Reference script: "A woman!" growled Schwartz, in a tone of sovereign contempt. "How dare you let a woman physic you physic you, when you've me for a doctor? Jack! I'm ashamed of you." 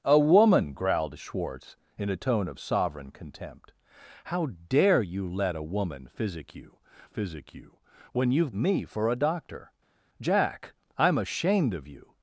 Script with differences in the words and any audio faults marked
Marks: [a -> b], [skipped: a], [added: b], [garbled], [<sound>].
"A woman!" growled Schwartz, in a tone of sovereign contempt. "How dare you let a woman physic you physic you, when you've me for a doctor? Jack! I'm ashamed of you."